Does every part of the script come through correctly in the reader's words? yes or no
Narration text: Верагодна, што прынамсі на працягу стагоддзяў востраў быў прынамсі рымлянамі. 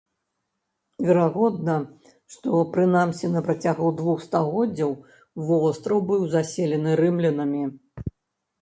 no